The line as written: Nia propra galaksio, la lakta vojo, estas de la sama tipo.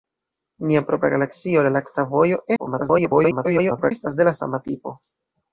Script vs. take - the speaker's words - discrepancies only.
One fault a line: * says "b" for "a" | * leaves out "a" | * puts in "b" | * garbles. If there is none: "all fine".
* garbles